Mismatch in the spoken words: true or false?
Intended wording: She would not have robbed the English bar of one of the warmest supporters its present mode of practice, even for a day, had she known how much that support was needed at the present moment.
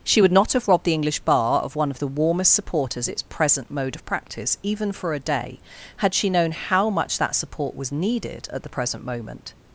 false